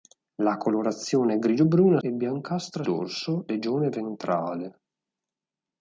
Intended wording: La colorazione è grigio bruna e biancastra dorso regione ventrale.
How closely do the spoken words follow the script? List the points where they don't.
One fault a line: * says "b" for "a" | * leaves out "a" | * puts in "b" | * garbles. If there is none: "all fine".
all fine